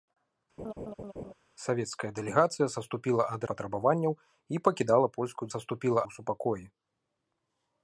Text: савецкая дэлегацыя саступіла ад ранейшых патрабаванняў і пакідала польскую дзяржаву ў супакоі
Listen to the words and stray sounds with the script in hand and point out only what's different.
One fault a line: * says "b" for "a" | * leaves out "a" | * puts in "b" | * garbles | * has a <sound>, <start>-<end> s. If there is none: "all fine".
* has a laugh, 0.6-1.3 s
* leaves out "ранейшых"
* says "саступіла" for "дзяржаву"